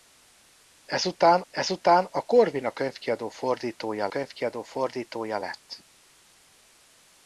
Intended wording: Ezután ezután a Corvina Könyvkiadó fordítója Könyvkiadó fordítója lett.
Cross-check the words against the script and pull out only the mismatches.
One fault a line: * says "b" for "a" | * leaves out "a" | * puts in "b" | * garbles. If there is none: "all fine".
all fine